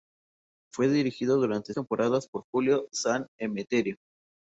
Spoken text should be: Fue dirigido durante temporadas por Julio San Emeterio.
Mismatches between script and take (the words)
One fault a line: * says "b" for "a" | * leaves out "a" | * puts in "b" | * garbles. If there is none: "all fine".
all fine